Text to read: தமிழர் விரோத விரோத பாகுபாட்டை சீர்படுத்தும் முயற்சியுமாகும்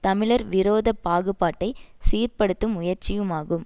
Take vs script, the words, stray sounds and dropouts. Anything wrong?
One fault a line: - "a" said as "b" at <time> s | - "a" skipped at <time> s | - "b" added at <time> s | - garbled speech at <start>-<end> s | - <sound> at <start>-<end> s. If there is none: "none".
- "விரோத" skipped at 0.9 s